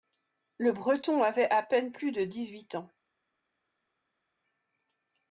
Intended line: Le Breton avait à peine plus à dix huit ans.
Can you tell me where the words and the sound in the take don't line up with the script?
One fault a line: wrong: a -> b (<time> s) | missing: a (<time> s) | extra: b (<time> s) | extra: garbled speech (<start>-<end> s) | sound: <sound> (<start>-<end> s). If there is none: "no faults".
wrong: à -> de (2.1 s)